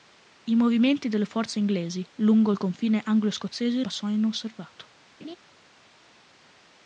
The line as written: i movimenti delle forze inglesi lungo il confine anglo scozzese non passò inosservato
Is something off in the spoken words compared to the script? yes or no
yes